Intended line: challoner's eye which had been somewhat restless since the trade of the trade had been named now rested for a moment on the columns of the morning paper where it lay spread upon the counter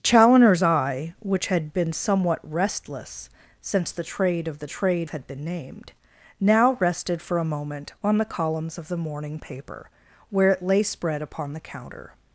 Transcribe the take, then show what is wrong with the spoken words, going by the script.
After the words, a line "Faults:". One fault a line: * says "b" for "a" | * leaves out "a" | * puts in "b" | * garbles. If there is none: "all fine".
challoner's eye which had been somewhat restless since the trade of the trade had been named now rested for a moment on the columns of the morning paper where it lay spread upon the counter
Faults:
all fine